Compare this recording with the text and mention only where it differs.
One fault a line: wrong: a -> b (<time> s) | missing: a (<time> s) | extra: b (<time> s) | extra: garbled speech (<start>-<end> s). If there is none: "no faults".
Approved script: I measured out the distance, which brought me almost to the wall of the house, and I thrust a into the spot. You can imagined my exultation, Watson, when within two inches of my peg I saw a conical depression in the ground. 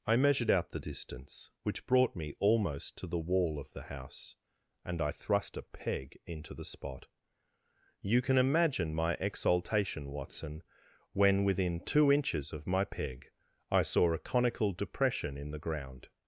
extra: peg (5.6 s)
wrong: imagined -> imagine (8.4 s)